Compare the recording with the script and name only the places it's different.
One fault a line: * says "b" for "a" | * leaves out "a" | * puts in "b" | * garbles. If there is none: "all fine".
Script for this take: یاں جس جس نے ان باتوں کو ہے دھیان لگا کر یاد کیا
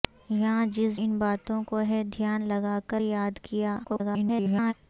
* leaves out "جس نے"
* garbles